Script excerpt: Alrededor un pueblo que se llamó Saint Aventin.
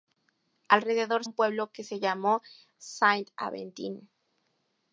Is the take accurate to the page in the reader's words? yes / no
yes